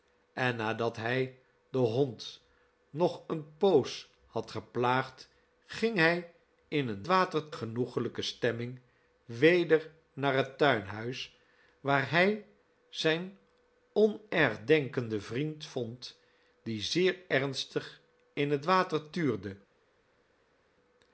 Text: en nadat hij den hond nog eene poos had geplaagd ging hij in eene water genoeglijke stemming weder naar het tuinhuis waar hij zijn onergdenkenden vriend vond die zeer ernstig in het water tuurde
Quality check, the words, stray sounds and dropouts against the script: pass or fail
pass